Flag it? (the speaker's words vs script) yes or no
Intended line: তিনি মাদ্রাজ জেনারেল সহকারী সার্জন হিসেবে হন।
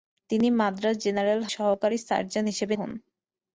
no